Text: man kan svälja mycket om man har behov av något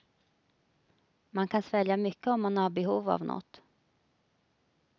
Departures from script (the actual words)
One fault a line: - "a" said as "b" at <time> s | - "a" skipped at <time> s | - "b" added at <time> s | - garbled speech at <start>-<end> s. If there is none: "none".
none